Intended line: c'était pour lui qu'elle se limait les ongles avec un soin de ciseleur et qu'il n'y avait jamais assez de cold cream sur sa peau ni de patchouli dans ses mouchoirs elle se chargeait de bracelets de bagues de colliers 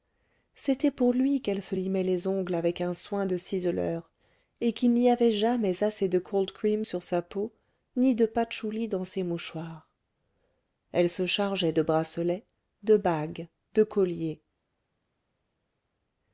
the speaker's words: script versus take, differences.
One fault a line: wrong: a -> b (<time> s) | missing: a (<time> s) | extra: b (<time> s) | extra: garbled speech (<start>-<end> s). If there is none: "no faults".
no faults